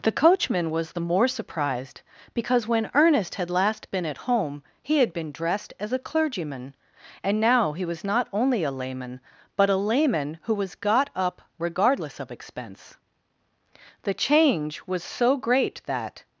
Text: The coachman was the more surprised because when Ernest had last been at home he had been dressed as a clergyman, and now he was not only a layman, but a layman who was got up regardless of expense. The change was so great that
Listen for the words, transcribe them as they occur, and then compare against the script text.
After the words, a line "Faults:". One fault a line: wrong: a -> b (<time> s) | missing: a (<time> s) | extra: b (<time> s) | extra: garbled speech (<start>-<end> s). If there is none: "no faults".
The coachman was the more surprised because when Ernest had last been at home he had been dressed as a clergyman, and now he was not only a layman, but a layman who was got up regardless of expense. The change was so great that
Faults:
no faults